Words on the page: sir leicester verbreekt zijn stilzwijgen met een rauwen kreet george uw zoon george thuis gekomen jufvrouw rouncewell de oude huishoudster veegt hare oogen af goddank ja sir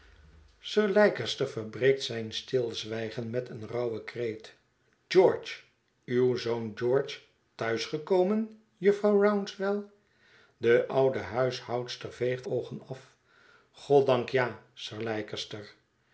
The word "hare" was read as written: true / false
false